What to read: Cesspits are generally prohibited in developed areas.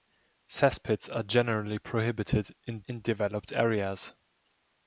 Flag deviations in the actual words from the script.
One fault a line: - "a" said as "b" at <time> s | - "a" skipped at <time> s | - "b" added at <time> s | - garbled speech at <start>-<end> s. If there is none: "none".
- "in" added at 2.9 s